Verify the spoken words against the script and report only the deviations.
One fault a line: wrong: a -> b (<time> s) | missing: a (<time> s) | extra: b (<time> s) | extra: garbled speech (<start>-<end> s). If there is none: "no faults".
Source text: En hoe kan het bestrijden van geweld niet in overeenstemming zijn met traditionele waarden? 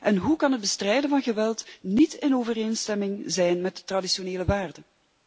no faults